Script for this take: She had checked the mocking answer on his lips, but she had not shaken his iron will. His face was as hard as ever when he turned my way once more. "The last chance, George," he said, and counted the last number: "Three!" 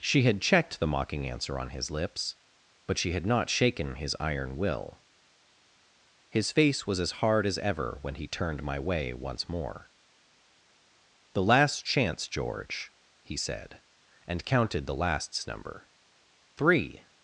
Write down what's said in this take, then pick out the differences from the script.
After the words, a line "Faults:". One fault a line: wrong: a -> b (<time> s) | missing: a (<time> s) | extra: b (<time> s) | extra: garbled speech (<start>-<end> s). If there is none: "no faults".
She had checked the mocking answer on his lips, but she had not shaken his iron will. His face was as hard as ever when he turned my way once more. "The last chance, George," he said, and counted the lasts number: "Three!"
Faults:
wrong: last -> lasts (15.0 s)